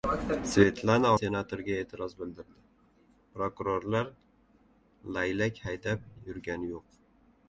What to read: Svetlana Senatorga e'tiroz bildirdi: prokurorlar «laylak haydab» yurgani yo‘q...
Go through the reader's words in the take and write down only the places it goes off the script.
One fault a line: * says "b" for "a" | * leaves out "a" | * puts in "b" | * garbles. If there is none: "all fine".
all fine